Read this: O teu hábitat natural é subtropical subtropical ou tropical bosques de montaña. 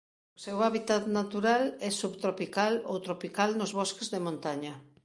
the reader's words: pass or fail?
fail